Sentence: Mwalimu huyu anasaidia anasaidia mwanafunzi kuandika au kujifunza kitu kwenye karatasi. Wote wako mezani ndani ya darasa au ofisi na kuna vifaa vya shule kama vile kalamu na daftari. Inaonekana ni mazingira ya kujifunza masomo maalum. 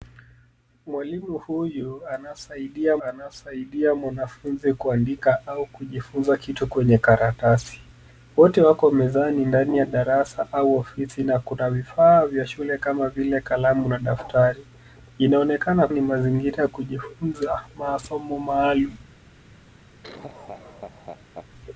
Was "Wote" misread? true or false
false